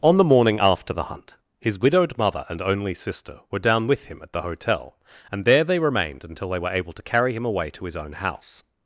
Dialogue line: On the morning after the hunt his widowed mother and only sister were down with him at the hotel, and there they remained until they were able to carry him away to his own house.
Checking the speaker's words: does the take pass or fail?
pass